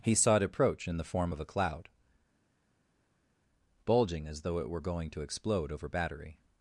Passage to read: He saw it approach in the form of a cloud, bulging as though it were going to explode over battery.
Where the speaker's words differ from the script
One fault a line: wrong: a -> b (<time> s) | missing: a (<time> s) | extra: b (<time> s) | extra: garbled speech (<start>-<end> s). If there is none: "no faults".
no faults